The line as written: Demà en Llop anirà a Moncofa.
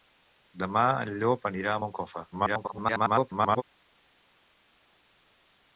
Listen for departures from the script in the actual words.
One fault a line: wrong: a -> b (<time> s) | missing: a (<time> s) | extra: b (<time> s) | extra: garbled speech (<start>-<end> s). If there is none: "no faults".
extra: garbled speech (2.3-3.6 s)